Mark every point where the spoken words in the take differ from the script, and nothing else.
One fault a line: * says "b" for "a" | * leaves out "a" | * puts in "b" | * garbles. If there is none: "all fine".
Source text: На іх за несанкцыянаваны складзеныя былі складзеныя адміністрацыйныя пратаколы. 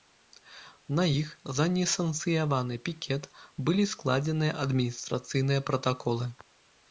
* says "пікет" for "складзеныя"